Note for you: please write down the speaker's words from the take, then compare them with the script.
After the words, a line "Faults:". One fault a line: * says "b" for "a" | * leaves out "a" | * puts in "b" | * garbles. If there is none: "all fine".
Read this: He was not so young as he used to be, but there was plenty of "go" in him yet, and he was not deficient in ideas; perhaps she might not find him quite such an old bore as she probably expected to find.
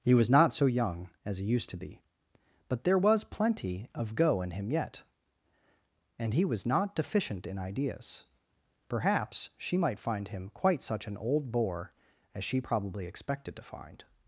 He was not so young as he used to be, but there was plenty of "go" in him yet, and he was not deficient in ideas; perhaps she might find him quite such an old bore as she probably expected to find.
Faults:
* leaves out "not"